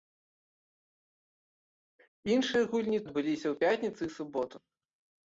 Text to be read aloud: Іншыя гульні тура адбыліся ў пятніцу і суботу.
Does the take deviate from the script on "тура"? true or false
true